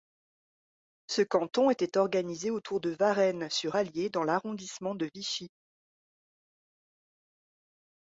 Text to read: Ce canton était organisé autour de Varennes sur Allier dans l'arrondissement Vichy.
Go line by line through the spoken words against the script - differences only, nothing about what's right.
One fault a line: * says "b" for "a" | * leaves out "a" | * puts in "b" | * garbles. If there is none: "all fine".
* puts in "de"